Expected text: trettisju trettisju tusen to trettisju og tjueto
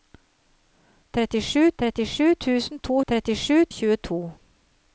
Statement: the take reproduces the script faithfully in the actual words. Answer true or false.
true